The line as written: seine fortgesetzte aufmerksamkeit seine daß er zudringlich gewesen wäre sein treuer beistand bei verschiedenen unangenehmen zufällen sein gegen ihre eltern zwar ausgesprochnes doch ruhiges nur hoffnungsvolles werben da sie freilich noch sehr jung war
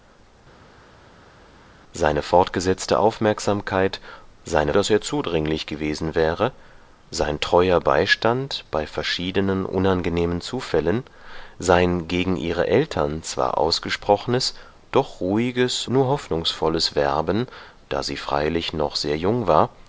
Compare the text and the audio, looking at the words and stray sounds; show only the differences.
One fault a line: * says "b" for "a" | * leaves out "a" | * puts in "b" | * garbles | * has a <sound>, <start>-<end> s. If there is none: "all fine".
all fine